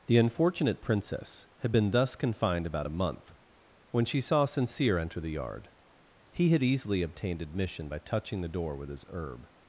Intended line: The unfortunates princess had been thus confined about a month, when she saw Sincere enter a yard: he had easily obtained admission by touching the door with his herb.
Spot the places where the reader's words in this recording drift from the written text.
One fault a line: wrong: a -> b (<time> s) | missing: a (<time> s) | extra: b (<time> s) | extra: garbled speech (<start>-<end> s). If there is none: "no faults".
wrong: unfortunates -> unfortunate (0.2 s)
wrong: a -> the (5.2 s)